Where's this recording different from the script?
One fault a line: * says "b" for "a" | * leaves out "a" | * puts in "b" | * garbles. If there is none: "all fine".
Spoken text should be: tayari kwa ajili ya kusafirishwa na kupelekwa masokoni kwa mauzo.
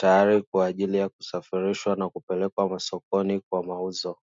all fine